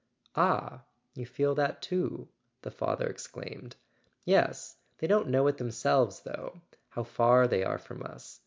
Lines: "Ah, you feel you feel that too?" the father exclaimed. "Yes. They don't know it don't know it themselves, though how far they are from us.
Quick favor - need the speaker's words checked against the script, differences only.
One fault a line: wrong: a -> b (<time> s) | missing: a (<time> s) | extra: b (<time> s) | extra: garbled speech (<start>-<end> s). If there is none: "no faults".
missing: you feel (1.5 s)
missing: don't know it (5.6 s)